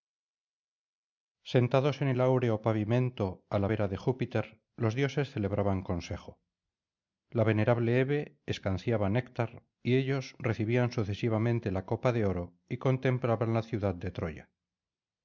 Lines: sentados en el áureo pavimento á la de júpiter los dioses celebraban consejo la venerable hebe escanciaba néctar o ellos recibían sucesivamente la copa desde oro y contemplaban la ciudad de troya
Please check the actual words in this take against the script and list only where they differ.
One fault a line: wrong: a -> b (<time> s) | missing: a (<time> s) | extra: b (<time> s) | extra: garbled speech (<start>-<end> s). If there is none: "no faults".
extra: vera (3.7 s)
wrong: o -> y (9.8 s)
wrong: desde -> de (12.1 s)